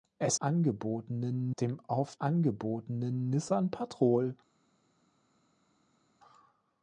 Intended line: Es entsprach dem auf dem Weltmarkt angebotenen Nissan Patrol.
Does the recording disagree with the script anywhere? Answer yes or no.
yes